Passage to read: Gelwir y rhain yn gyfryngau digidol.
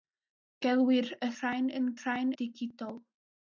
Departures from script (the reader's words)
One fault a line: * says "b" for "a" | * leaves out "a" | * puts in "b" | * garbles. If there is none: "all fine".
* says "rhain" for "gyfryngau"